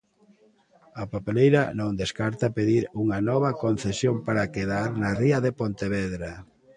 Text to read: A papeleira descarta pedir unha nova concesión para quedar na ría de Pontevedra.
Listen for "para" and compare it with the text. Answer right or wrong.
right